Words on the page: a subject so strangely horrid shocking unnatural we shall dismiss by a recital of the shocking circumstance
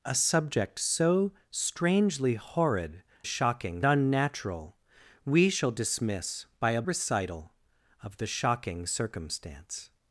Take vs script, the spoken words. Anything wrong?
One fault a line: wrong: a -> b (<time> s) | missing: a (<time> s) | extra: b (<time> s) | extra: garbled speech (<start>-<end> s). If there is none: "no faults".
no faults